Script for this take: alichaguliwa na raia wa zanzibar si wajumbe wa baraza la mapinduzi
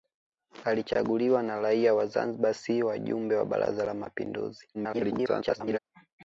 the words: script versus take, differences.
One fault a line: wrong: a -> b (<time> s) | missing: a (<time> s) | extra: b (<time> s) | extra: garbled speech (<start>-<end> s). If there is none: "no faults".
extra: garbled speech (4.7-5.8 s)